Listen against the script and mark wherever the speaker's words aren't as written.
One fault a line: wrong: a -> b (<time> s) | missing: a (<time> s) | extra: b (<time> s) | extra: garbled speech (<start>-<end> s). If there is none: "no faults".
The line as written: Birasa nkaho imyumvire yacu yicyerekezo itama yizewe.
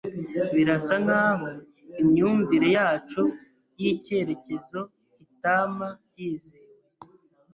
no faults